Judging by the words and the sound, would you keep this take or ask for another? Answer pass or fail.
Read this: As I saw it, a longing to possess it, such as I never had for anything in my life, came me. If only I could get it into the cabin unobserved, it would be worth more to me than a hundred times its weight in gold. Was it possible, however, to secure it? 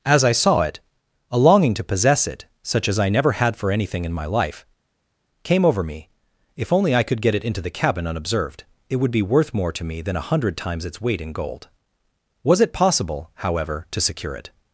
fail